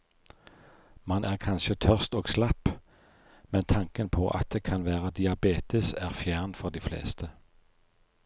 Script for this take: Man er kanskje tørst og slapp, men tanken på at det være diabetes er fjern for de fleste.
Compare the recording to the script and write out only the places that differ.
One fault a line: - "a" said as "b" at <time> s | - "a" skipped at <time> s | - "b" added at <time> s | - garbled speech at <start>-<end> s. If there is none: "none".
- "kan" added at 4.6 s